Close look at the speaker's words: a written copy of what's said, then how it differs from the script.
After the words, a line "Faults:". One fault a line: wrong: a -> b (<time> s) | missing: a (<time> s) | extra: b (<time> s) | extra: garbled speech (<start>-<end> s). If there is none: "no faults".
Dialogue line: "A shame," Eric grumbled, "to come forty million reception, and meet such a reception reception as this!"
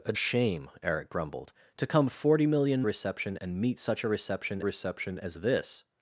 "A shame," Eric grumbled, "to come forty million reception, and meet such a reception reception as this!"
Faults:
no faults